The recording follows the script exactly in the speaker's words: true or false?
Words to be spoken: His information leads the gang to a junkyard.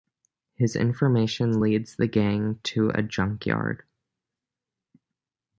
true